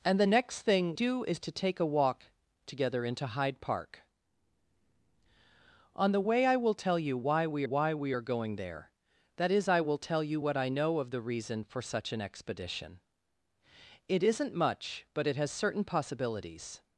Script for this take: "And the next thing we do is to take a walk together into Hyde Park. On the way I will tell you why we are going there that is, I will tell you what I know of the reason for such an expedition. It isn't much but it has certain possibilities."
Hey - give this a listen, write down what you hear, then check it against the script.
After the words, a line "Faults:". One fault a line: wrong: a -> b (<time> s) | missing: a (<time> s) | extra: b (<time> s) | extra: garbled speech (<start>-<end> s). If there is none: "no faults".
"And the next thing do is to take a walk together into Hyde Park. On the way I will tell you why we why we are going there that is, I will tell you what I know of the reason for such an expedition. It isn't much but it has certain possibilities."
Faults:
missing: we (0.9 s)
extra: why we (7.6 s)